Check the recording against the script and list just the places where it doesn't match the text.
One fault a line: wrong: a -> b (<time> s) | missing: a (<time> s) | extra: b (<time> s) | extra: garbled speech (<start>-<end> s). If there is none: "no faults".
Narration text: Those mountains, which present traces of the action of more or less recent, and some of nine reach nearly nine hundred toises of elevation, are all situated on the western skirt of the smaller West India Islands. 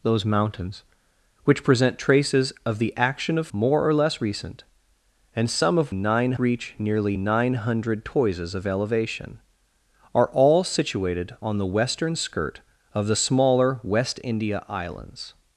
no faults